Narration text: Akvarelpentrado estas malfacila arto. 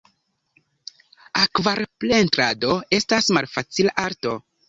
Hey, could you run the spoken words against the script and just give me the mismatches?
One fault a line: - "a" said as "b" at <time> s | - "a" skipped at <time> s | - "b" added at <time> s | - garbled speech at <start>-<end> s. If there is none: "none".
none